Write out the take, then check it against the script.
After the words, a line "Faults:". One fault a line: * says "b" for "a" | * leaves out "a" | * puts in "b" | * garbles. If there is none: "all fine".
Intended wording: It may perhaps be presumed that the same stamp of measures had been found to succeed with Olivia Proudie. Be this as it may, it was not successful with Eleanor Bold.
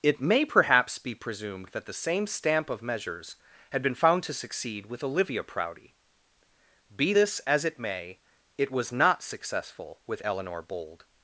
It may perhaps be presumed that the same stamp of measures had been found to succeed with Olivia Proudie. Be this as it may, it was not successful with Eleanor Bold.
Faults:
all fine